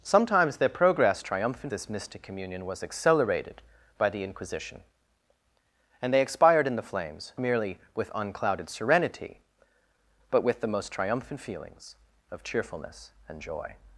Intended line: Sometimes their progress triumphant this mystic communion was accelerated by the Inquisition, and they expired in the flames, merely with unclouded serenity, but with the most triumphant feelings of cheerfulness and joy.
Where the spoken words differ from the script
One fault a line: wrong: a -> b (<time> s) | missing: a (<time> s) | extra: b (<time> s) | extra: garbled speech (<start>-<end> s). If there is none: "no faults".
no faults